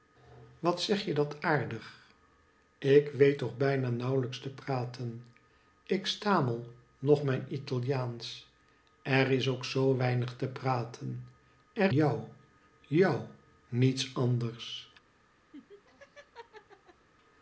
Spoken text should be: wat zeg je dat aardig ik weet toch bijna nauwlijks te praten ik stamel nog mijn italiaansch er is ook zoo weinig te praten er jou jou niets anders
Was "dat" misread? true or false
false